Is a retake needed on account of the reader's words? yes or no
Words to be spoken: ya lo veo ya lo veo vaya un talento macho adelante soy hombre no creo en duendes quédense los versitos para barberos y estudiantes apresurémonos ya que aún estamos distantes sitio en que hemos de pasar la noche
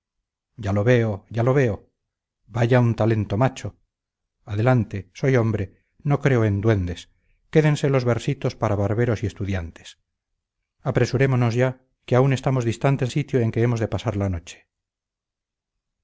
no